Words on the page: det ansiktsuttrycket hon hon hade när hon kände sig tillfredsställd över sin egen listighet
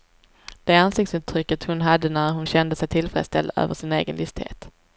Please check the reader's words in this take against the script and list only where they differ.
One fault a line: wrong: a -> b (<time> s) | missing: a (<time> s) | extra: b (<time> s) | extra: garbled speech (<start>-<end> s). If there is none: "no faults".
missing: hon (1.8 s)